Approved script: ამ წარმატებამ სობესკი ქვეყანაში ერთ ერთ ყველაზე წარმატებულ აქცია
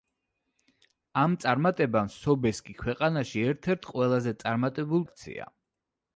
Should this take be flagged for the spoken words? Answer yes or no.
no